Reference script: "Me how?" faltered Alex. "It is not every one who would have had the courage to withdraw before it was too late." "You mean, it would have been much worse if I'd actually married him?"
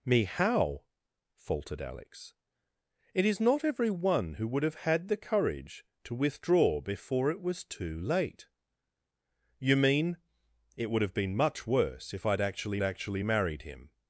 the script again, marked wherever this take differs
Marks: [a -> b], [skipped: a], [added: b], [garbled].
"Me how?" faltered Alex. "It is not every one who would have had the courage to withdraw before it was too late." "You mean, it would have been much worse if I'd actually [added: actually] married him?"